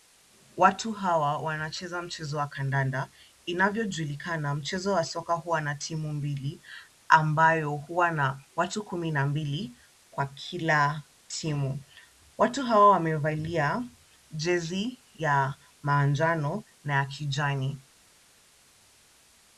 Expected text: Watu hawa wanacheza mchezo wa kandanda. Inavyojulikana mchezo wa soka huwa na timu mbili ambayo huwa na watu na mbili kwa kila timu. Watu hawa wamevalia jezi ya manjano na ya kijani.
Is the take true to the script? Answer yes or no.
no